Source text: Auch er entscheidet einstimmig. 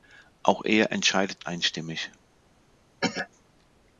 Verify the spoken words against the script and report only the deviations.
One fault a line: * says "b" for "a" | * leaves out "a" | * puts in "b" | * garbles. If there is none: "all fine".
all fine